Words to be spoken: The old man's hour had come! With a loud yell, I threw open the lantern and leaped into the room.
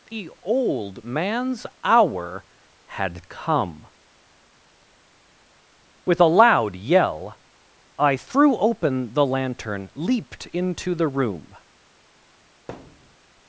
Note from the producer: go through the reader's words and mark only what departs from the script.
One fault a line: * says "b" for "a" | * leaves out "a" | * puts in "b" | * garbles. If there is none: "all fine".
* leaves out "and"